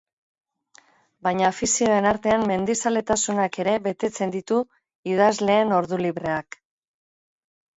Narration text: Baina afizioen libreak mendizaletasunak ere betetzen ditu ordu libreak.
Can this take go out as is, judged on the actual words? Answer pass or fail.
fail